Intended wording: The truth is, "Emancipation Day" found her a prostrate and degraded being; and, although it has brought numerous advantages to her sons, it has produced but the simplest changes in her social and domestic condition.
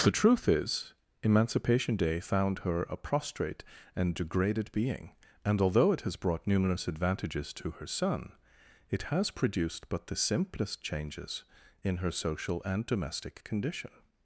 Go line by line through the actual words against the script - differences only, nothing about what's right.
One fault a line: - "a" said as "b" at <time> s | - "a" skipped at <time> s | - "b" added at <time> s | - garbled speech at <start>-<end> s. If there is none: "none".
- "sons" said as "son" at 7.8 s